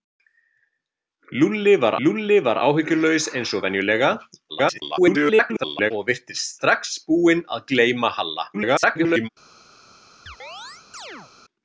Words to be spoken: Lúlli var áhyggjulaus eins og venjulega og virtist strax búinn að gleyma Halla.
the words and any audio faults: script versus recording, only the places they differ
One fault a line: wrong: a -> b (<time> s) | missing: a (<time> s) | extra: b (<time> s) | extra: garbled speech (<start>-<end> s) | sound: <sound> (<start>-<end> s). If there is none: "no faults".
extra: lúlli var (2.1 s)
extra: garbled speech (4.5-5.9 s)
extra: garbled speech (8.5-9.3 s)
sound: chirp (10.3-11.3 s)